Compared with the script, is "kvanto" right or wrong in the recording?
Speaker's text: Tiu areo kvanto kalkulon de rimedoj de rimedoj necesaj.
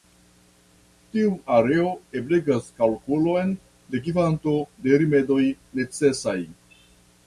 wrong